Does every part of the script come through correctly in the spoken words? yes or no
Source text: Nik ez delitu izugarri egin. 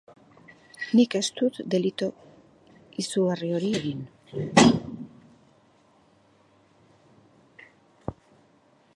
no